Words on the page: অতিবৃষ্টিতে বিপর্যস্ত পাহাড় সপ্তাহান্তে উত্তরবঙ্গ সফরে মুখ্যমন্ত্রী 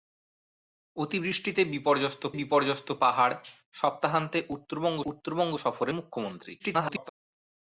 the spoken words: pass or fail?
fail